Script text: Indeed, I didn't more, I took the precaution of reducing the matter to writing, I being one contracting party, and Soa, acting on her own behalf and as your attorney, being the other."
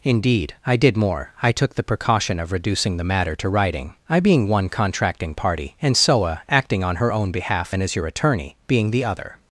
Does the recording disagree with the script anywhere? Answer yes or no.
yes